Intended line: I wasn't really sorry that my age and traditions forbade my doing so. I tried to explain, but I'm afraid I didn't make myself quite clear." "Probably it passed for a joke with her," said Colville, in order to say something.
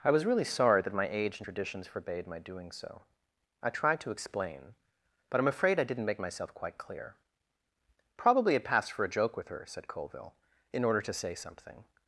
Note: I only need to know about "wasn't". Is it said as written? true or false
false